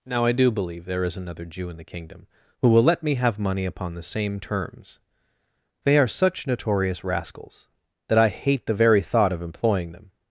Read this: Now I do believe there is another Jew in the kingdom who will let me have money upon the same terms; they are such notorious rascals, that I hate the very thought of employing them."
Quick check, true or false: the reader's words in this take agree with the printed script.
true